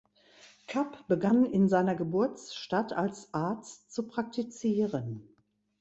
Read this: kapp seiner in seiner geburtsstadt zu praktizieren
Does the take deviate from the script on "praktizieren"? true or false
false